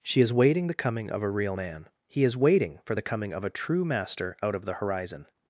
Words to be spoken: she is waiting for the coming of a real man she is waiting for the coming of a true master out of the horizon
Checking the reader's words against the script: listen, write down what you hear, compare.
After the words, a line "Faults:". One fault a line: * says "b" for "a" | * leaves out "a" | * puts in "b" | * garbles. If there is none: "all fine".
she is waiting the coming of a real man he is waiting for the coming of a true master out of the horizon
Faults:
* leaves out "for"
* says "he" for "she"